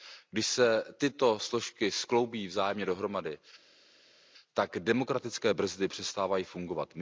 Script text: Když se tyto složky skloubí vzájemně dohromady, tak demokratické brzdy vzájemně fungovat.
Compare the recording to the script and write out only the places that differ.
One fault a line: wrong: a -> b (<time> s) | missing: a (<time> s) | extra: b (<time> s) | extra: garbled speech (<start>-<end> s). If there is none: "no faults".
wrong: vzájemně -> přestávají (5.9 s)